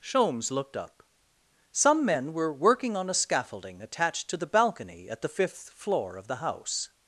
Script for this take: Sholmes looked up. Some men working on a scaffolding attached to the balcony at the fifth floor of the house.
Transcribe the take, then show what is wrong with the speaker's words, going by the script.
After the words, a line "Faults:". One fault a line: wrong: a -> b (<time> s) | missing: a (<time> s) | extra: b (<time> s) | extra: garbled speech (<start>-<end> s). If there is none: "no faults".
Sholmes looked up. Some men were working on a scaffolding attached to the balcony at the fifth floor of the house.
Faults:
extra: were (2.3 s)